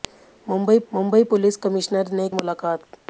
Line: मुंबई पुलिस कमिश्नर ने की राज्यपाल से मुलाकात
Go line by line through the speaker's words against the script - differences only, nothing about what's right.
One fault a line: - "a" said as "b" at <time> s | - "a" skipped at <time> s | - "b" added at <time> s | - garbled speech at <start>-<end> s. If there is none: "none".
- "मुंबई" added at 0.9 s
- "की राज्यपाल से" skipped at 2.3 s